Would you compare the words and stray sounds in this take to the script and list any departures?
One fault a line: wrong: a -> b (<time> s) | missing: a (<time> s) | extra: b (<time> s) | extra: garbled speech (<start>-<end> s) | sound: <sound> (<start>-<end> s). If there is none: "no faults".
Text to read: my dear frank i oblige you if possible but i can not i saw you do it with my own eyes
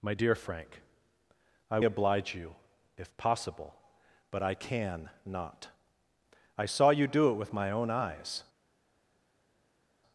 no faults